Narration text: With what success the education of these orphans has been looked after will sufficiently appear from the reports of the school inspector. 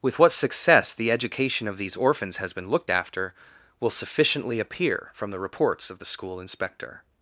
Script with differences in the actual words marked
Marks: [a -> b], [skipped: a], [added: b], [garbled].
With what success the education of these orphans has been looked after will sufficiently appear from the reports of the school inspector.